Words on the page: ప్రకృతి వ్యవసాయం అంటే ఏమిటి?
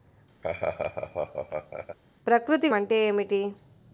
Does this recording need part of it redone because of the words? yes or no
yes